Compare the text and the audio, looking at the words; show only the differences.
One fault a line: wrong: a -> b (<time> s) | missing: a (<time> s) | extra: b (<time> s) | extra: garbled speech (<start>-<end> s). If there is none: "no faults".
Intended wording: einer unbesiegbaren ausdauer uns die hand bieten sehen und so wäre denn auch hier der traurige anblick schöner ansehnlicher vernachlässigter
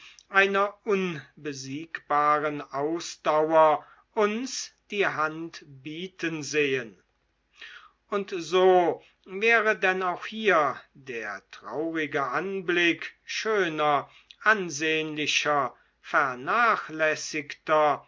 no faults